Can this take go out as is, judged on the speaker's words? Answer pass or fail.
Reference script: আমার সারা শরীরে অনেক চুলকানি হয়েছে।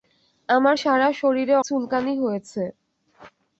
fail